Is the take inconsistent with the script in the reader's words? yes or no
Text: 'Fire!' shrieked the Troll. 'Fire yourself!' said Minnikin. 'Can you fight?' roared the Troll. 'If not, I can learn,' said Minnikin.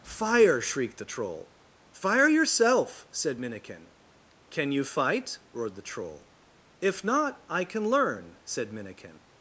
no